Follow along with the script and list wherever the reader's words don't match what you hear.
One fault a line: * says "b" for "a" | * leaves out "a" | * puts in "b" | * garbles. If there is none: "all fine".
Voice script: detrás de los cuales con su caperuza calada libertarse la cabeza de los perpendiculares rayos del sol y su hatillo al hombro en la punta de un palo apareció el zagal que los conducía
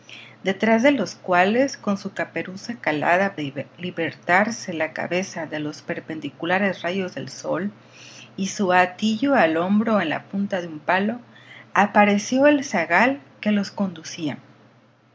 all fine